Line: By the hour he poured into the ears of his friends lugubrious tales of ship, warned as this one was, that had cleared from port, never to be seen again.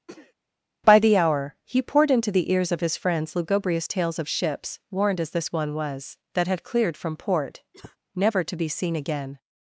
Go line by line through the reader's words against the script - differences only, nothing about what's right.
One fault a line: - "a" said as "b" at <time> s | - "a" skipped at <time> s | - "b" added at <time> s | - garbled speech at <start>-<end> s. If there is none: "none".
- "ship" said as "ships" at 4.3 s